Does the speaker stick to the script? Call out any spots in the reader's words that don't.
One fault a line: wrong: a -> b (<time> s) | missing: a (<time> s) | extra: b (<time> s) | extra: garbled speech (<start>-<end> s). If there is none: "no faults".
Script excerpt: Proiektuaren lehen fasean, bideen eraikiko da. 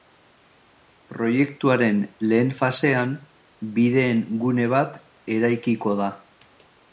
extra: gune bat (4.5 s)